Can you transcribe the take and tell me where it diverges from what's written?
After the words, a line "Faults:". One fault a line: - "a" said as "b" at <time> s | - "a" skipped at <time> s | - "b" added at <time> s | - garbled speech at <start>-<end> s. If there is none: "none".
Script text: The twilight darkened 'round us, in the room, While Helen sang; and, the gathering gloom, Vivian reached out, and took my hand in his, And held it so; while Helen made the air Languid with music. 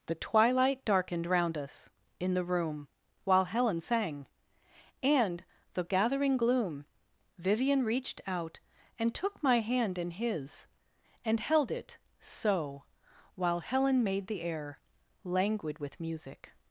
The twilight darkened 'round us, in the room, While Helen sang; and, the gathering gloom, Vivian reached out, and took my hand in his, And held it so; while Helen made the air Languid with music.
Faults:
none